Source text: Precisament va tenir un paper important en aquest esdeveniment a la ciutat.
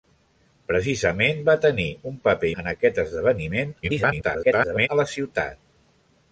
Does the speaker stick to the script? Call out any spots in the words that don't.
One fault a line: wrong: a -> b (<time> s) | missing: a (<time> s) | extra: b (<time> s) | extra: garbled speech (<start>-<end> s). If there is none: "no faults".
missing: important (2.5 s)
extra: garbled speech (3.8-4.9 s)